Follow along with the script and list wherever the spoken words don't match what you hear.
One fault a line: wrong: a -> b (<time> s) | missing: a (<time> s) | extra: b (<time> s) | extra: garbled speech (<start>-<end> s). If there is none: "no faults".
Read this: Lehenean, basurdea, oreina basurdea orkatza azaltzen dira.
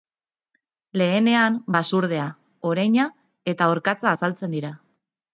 wrong: basurdea -> eta (3.5 s)